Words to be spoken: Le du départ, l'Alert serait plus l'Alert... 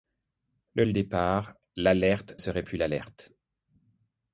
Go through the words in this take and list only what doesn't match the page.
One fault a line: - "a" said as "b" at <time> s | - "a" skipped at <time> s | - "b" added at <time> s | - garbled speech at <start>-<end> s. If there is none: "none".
none